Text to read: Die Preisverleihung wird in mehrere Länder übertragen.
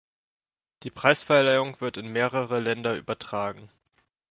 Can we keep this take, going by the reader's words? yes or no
yes